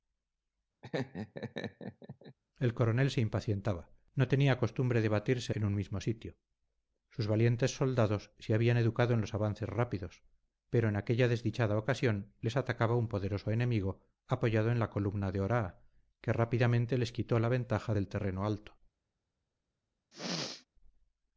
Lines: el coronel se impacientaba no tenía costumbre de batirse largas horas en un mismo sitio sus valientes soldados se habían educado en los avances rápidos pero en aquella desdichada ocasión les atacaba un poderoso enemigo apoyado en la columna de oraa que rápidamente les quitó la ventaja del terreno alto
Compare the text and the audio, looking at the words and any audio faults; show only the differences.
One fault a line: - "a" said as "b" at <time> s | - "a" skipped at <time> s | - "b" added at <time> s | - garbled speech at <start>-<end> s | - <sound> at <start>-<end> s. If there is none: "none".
- laugh at 0.8-2.4 s
- "largas horas" skipped at 5.5 s
- throat clearing at 20.1-20.7 s